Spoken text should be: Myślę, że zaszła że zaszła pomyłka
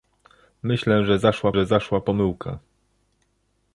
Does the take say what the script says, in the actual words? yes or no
yes